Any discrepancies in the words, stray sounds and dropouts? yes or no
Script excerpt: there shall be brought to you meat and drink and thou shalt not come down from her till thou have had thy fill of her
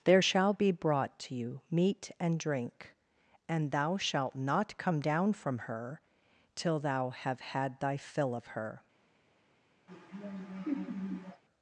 yes